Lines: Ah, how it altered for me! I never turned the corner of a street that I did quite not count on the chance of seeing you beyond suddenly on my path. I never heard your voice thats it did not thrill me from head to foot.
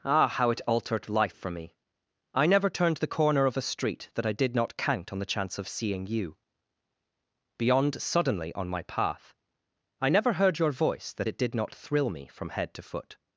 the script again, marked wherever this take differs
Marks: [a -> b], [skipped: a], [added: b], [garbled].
Ah, how it altered [added: life] for me! I never turned the corner of a street that I did [skipped: quite] not count on the chance of seeing you beyond suddenly on my path. I never heard your voice [thats -> that] it did not thrill me from head to foot.